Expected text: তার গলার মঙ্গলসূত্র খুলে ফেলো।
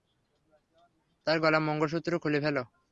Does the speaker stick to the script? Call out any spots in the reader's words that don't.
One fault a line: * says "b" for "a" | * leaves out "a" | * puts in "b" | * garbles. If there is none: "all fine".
all fine